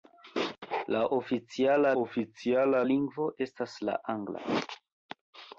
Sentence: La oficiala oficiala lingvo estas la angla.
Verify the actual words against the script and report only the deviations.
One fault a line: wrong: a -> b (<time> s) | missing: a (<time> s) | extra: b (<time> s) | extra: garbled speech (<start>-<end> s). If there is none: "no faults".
no faults